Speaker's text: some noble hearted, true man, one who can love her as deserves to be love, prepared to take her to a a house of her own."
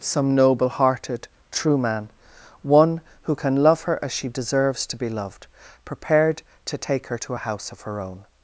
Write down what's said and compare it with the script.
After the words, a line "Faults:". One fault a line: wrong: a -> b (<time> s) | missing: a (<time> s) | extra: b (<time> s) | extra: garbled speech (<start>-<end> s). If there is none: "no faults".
some noble hearted, true man, one who can love her as she deserves to be loved, prepared to take her to a house of her own."
Faults:
extra: she (4.1 s)
wrong: love -> loved (5.1 s)
missing: a (7.4 s)